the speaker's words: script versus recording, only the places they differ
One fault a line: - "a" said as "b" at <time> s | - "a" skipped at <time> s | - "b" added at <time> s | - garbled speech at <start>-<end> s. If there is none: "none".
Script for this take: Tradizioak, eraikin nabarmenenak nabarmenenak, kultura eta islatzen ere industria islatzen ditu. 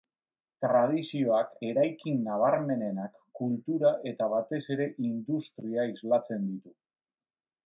- "nabarmenenak" skipped at 3.1 s
- "islatzen" said as "batez" at 4.3 s